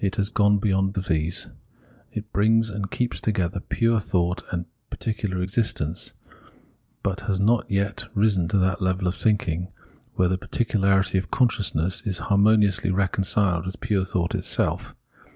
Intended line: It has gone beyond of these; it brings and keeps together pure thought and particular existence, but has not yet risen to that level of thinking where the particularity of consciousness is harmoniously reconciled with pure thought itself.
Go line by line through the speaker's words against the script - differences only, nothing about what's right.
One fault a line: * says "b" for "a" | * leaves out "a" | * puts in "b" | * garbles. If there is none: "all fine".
all fine